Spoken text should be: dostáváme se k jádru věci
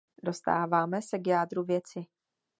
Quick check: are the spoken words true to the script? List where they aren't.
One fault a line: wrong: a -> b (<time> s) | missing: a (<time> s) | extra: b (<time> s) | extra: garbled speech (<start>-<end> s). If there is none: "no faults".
no faults